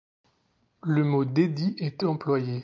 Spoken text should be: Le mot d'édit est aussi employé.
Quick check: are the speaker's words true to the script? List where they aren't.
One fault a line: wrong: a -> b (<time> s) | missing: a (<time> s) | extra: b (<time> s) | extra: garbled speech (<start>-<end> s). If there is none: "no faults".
missing: aussi (2.0 s)